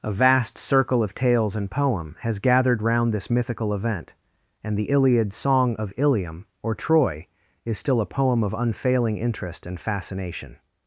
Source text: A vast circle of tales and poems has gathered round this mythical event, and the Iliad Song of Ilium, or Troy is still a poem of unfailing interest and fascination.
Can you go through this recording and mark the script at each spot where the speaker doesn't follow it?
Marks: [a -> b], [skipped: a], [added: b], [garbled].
A vast circle of tales and [poems -> poem] has gathered round this mythical event, and the Iliad Song of Ilium, or Troy is still a poem of unfailing interest and fascination.